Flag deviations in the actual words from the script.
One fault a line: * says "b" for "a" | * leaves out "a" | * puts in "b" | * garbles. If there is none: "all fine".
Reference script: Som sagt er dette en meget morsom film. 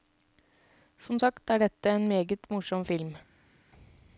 all fine